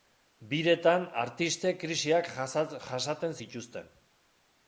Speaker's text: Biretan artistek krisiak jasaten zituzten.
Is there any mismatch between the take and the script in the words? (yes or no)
no